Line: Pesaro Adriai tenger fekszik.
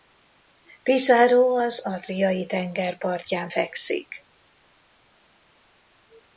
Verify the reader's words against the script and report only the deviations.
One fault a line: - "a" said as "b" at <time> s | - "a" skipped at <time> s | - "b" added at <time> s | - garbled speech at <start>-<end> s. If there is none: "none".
- "az" added at 1.6 s
- "partján" added at 3.0 s